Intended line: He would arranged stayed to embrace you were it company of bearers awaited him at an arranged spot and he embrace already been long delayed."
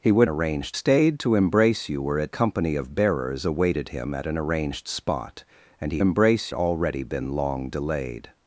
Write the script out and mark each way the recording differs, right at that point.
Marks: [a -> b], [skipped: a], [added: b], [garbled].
He would arranged stayed to embrace you were it company of bearers awaited him at an arranged spot and he embrace already been long delayed."